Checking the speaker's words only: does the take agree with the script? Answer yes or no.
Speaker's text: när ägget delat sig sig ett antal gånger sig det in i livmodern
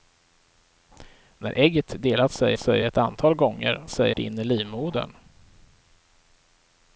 yes